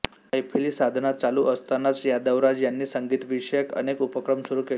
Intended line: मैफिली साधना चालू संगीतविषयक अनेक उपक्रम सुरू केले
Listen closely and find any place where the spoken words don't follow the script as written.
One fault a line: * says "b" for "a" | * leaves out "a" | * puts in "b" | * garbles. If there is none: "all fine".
* puts in "असतानाच यादवराज यांनी"